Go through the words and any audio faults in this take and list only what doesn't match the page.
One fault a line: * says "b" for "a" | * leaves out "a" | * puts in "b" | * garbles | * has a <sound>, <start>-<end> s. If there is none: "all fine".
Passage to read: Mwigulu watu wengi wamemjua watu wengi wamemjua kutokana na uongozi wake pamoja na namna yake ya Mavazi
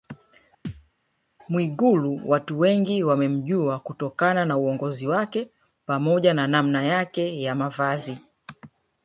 * has a thud, 0.6-0.9 s
* leaves out "watu wengi wamemjua"